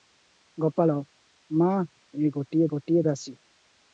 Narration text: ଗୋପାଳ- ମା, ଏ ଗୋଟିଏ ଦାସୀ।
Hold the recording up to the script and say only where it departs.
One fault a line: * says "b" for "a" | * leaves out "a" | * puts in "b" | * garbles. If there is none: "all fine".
* puts in "ଗୋଟିଏ"